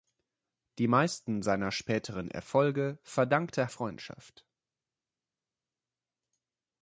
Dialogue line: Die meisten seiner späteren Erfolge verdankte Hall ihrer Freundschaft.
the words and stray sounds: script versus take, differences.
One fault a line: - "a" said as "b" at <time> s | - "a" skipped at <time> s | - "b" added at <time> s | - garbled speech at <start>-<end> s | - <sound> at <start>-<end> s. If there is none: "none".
- "Hall ihrer" skipped at 3.7 s